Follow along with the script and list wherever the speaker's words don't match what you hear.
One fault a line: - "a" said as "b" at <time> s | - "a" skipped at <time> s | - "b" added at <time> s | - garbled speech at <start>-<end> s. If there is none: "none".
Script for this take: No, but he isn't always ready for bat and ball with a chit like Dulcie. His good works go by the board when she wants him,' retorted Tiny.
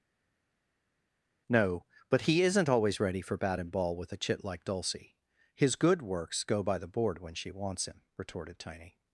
none